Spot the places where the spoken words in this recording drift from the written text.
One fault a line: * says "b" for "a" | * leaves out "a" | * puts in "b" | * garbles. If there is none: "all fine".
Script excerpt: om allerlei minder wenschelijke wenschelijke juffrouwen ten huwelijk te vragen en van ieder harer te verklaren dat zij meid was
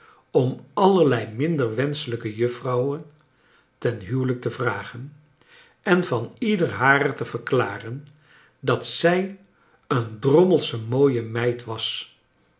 * leaves out "wenschelijke"
* puts in "een drommelsche mooie"